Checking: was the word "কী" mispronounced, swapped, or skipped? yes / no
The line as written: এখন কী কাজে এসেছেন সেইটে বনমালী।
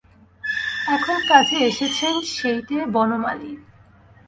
yes